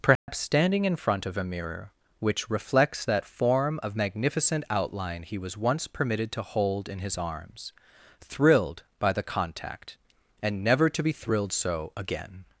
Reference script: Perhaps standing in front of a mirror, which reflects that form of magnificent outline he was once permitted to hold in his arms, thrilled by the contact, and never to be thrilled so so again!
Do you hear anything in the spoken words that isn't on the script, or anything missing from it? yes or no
yes